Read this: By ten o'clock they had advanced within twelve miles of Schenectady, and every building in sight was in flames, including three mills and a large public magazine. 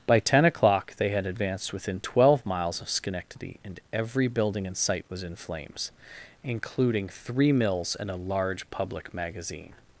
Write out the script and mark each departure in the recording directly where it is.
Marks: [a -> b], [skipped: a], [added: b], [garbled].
By ten o'clock they had advanced within twelve miles of Schenectady, and every building in sight was in flames, including three mills and a large public magazine.